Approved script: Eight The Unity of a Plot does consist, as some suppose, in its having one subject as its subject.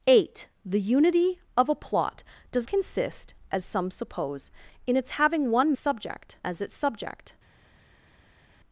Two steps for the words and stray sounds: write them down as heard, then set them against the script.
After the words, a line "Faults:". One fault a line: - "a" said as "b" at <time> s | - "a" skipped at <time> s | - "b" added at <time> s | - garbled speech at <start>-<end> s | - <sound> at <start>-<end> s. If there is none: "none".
Eight The Unity of a Plot does consist, as some suppose, in its having one subject as its subject.
Faults:
none